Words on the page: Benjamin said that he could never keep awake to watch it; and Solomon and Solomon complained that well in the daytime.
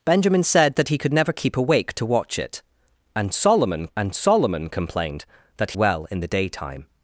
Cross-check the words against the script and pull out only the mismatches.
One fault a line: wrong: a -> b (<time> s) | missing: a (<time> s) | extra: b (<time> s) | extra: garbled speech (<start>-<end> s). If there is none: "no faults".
no faults